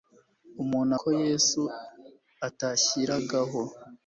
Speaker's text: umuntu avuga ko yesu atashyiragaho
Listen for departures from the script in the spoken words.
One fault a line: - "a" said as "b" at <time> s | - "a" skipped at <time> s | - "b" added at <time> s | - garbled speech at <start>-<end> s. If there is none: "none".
- "avuga" skipped at 0.9 s